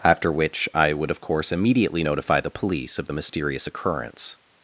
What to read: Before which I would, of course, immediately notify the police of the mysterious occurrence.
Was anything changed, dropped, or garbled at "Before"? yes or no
yes